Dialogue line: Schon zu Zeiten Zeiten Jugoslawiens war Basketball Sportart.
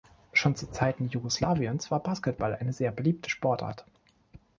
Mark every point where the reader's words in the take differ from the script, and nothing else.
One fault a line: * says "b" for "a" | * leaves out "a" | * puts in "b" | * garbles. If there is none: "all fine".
* leaves out "Zeiten"
* puts in "eine sehr beliebte"